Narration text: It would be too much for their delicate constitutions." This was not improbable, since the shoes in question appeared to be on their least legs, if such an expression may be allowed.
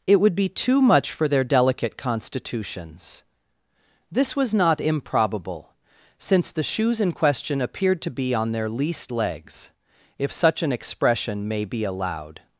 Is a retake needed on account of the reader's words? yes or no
no